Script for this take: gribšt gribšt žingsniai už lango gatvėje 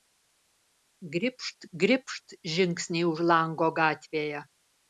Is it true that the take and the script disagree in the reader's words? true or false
false